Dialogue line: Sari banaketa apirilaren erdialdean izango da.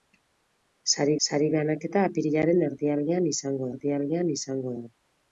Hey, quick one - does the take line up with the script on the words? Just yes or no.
no